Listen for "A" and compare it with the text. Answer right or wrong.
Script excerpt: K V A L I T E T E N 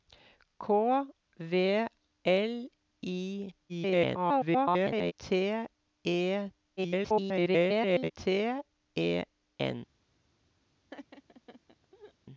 wrong